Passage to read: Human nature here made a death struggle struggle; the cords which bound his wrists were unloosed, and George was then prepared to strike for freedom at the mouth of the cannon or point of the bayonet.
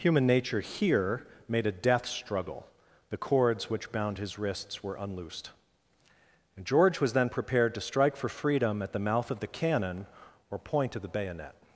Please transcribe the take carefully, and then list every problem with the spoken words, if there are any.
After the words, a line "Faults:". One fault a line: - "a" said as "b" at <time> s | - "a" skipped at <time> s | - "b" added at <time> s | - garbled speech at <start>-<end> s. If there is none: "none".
Human nature here made a death struggle; the cords which bound his wrists were unloosed, and George was then prepared to strike for freedom at the mouth of the cannon or point of the bayonet.
Faults:
- "struggle" skipped at 2.6 s